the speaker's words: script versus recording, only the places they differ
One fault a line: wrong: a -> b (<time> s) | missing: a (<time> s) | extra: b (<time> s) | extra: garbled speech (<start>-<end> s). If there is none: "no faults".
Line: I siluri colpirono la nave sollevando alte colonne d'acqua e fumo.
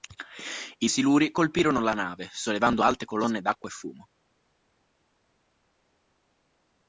no faults